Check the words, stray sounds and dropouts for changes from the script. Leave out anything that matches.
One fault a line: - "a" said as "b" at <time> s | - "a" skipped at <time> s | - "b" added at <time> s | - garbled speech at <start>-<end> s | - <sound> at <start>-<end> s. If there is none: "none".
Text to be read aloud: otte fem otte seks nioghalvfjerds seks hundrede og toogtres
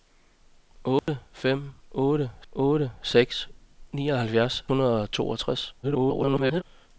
- dropout at 1.0-1.1 s
- "otte" added at 2.5 s
- "seks" skipped at 4.6 s
- garbled speech at 5.8-6.6 s